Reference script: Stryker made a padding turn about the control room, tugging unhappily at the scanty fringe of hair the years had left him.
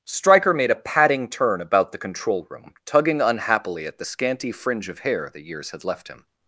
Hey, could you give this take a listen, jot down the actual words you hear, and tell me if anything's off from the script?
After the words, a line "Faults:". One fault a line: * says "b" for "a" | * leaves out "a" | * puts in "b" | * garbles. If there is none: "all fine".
Stryker made a padding turn about the control room, tugging unhappily at the scanty fringe of hair the years had left him.
Faults:
all fine